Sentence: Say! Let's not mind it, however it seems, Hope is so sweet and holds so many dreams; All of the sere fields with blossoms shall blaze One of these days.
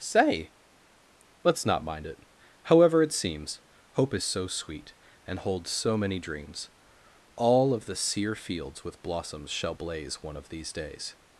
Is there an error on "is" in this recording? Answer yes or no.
no